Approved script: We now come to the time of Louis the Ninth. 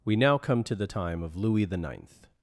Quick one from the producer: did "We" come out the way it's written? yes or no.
yes